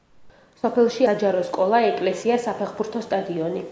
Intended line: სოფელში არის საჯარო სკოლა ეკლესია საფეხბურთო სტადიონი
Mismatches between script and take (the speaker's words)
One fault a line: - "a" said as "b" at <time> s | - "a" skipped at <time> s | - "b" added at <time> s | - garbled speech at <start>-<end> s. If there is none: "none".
- "არის" skipped at 1.1 s